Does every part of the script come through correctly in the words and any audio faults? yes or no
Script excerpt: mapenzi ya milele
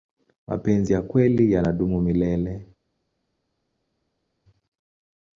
no